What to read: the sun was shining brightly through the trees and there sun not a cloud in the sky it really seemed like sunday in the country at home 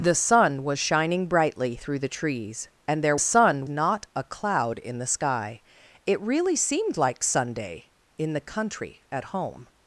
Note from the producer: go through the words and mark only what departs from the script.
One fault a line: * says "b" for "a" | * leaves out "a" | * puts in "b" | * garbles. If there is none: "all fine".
all fine